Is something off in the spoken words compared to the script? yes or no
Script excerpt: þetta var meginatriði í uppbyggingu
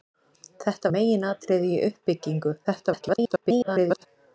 yes